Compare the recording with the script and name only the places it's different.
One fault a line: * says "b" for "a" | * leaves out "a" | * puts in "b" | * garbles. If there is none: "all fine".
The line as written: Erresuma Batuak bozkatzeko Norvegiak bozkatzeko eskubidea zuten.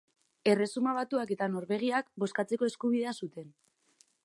* says "eta" for "bozkatzeko"